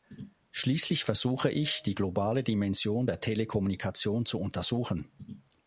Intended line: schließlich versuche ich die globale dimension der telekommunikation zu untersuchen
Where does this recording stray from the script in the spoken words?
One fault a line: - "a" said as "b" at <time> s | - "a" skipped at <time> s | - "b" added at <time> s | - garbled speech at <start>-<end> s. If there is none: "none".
none